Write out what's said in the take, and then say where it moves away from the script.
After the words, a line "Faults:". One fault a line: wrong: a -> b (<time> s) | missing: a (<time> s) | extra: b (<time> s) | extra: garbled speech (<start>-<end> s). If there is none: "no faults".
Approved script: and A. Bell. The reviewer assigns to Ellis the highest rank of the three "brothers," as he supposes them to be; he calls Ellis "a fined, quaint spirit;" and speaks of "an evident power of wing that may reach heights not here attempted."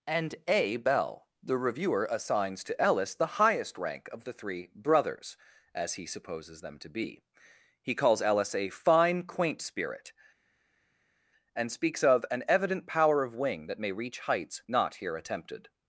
and A. Bell. The reviewer assigns to Ellis the highest rank of the three "brothers," as he supposes them to be; he calls Ellis "a fine, quaint spirit;" and speaks of "an evident power of wing that may reach heights not here attempted."
Faults:
wrong: fined -> fine (8.7 s)